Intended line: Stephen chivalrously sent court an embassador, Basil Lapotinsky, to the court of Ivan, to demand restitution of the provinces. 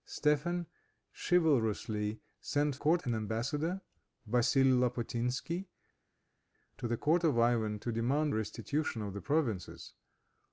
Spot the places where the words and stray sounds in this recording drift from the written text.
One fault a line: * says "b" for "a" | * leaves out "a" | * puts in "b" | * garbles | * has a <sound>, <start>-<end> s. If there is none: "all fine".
all fine